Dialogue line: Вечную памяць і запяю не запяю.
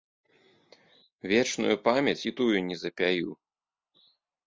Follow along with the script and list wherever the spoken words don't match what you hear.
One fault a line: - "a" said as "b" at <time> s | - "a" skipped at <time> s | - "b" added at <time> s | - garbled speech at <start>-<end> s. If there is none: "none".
- "запяю" said as "тую" at 2.4 s